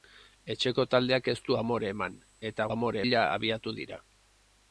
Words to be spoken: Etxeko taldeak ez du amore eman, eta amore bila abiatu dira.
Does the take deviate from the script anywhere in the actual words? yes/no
no